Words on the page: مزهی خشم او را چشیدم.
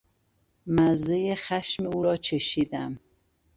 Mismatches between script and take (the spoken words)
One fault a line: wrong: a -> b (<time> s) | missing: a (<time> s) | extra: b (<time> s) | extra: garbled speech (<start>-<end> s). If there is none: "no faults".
no faults